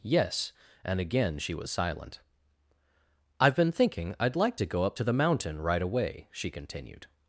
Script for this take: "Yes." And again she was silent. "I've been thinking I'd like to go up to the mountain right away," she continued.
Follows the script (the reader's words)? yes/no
yes